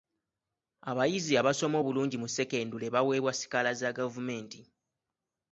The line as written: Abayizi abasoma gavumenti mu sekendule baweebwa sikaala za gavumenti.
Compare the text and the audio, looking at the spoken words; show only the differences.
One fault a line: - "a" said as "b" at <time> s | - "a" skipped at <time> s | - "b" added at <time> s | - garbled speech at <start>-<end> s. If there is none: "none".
- "gavumenti" said as "obulungi" at 1.8 s